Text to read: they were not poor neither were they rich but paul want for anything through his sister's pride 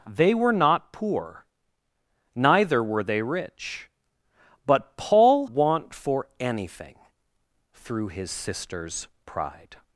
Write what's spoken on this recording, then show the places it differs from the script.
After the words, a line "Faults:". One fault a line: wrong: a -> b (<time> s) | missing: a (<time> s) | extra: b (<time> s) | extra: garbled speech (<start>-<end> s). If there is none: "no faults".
they were not poor neither were they rich but paul want for anything through his sister's pride
Faults:
no faults